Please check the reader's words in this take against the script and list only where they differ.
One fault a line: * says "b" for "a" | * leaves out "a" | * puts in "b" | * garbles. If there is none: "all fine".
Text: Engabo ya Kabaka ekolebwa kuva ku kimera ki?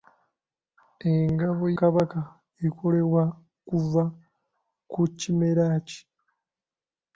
* leaves out "ya"